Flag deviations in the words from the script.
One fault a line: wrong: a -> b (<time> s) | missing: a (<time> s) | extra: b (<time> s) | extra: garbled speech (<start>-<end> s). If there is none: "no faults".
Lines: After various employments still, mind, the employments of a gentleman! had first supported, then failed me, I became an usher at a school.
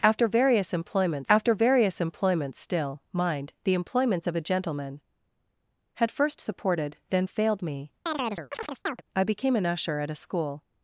extra: after various employments (1.3 s)